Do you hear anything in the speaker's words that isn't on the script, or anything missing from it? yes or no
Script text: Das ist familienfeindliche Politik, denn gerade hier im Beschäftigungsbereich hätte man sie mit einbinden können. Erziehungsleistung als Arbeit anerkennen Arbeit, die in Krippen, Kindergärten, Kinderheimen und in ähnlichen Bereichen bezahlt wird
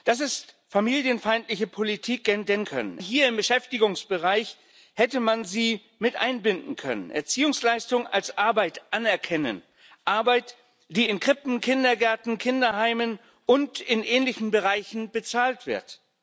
yes